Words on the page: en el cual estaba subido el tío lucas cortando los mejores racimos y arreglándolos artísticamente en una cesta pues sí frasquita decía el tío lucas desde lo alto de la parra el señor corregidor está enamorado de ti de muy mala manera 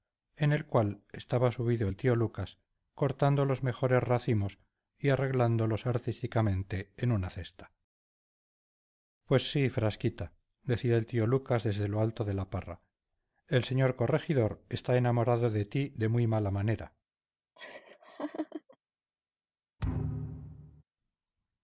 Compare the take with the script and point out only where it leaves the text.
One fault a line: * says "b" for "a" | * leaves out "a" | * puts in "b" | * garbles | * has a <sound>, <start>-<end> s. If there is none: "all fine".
* has a laugh, 17.6-18.8 s
* has a thud, 19.8-20.8 s